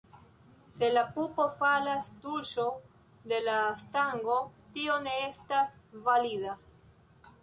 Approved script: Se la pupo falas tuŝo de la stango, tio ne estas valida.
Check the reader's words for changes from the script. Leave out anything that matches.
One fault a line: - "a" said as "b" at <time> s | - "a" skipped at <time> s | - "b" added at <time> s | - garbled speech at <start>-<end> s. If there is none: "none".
none